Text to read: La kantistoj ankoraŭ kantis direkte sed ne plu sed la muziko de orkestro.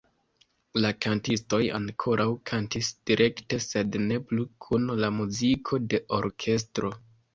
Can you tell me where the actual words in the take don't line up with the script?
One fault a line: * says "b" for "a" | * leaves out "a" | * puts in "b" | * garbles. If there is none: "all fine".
* says "kun" for "sed"